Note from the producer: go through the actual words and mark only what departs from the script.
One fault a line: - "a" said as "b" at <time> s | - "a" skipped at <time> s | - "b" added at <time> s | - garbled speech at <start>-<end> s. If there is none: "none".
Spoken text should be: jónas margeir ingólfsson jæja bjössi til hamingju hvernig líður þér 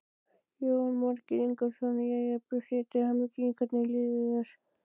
none